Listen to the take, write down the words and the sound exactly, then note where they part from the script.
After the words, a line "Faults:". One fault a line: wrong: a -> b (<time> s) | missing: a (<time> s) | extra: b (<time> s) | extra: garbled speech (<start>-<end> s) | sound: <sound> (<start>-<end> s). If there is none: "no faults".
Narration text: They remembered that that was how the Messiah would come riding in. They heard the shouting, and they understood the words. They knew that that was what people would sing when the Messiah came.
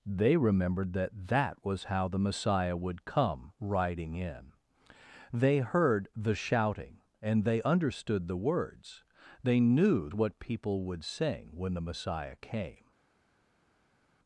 They remembered that that was how the Messiah would come riding in. They heard the shouting, and they understood the words. They knew what people would sing when the Messiah came.
Faults:
missing: that that was (10.1 s)